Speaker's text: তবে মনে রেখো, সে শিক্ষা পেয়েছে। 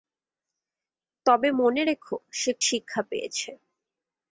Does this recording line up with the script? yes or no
yes